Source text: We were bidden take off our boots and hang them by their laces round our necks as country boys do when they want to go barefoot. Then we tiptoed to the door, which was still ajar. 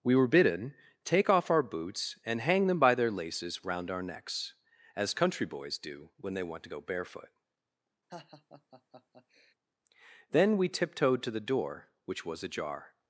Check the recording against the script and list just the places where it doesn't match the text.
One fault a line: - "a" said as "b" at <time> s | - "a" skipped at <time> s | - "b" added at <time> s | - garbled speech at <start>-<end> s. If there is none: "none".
- "still" skipped at 12.4 s